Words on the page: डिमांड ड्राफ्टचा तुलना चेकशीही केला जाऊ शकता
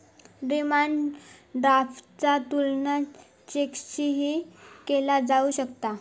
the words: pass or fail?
pass